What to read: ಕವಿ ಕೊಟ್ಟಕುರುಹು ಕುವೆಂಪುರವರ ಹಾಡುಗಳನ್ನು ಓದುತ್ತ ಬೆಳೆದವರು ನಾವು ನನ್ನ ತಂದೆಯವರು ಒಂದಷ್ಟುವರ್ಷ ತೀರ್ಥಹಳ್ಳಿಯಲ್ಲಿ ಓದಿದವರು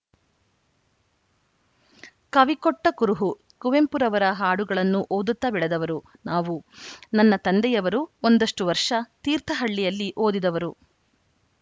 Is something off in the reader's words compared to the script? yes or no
no